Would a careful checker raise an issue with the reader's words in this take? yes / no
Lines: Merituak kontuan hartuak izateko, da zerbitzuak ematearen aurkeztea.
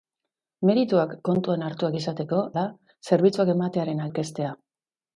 no